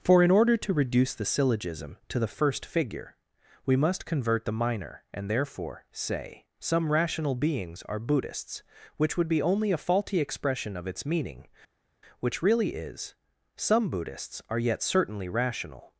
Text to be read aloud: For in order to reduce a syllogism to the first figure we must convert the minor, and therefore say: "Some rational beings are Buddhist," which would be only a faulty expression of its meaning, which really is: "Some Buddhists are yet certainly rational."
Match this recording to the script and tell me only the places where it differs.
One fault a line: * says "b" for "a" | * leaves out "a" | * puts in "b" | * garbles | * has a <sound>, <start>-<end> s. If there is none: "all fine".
* says "the" for "a"
* says "Buddhists" for "Buddhist"